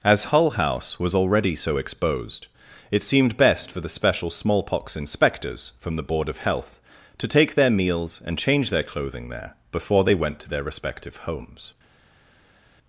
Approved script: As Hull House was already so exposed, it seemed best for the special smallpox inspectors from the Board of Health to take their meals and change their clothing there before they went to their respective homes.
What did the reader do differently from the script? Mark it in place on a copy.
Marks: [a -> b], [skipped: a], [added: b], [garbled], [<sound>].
As Hull House was already so exposed, it seemed best for the special smallpox inspectors from the Board of Health to take their meals and change their clothing there before they went to their respective homes.